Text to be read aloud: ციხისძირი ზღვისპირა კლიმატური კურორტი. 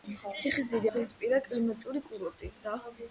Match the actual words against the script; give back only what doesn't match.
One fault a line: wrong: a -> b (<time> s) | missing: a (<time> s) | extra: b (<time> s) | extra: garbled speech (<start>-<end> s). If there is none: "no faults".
no faults